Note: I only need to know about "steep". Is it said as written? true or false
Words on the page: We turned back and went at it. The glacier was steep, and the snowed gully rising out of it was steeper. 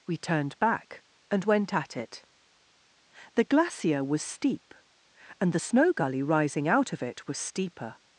true